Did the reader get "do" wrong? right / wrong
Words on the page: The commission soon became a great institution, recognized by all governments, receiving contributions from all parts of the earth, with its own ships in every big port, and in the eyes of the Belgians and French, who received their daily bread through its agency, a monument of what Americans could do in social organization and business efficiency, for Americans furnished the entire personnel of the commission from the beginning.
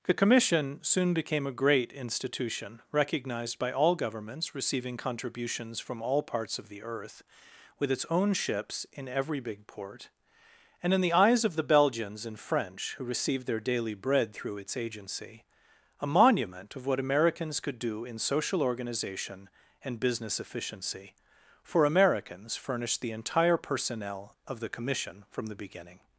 right